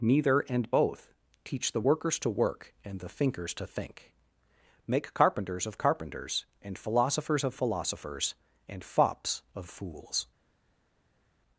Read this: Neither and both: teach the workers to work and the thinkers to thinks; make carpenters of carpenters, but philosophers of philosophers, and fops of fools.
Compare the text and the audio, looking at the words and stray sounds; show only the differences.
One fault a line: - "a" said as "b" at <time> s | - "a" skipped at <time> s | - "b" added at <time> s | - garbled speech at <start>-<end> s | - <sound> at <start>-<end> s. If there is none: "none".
- "thinks" said as "think" at 3.7 s
- "but" said as "and" at 6.6 s